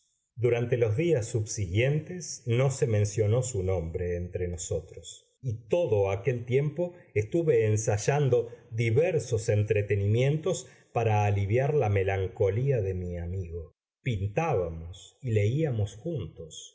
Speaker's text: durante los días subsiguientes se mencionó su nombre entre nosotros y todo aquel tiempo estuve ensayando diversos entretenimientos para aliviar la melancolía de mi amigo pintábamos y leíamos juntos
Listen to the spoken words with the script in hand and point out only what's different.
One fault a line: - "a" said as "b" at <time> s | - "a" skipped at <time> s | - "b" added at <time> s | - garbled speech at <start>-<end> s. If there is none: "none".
- "no" added at 2.5 s